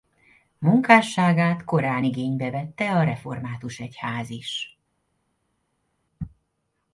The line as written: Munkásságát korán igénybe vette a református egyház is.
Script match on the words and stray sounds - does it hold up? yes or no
yes